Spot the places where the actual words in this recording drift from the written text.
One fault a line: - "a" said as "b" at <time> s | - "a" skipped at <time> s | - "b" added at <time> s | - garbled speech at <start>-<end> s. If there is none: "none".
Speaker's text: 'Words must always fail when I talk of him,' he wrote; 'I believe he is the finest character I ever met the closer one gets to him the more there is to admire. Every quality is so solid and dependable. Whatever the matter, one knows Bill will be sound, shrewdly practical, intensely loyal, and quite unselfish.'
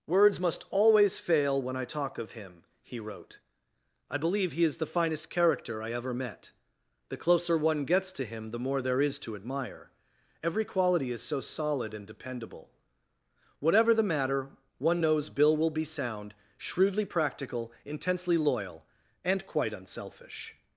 none